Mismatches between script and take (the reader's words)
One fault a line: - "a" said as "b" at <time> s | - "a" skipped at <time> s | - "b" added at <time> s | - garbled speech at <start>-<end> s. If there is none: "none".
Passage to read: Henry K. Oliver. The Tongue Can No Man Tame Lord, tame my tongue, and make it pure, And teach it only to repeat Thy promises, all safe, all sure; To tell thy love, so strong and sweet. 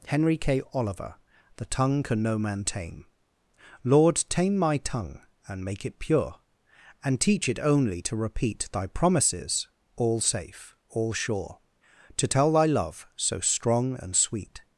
none